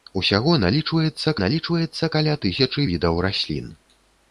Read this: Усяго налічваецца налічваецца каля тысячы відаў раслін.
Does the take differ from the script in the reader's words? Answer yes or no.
no